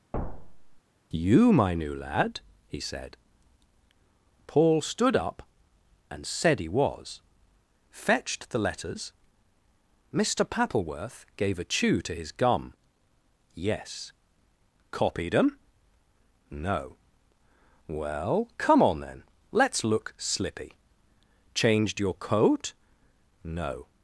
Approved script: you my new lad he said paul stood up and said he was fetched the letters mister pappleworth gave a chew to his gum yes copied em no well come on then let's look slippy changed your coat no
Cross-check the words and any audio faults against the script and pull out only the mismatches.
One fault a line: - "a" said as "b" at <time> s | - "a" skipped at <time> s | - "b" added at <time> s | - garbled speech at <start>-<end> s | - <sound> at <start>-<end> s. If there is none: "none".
- thud at 0.1-0.8 s